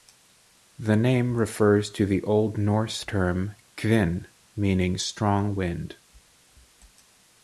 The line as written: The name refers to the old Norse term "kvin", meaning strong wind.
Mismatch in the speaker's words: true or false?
false